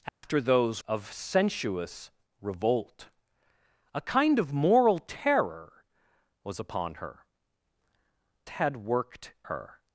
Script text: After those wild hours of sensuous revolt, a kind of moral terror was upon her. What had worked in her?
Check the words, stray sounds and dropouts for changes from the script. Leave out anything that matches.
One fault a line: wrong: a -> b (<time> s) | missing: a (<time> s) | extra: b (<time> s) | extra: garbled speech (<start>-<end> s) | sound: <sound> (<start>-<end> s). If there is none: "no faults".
sound: dropout (0.1-0.2 s)
missing: wild hours (0.8 s)
missing: What (7.2 s)
missing: in (9.3 s)